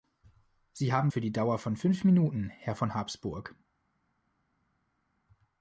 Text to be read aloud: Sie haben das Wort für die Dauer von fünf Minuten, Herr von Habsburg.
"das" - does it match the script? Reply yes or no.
no